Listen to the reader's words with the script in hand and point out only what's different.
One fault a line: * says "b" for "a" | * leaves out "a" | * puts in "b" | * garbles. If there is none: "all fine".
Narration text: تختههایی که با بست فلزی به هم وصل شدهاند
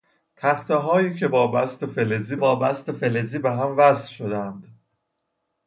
* puts in "با بست فلزی"